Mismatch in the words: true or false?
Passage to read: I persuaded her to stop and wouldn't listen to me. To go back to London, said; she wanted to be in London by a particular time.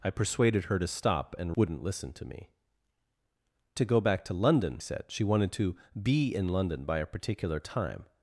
false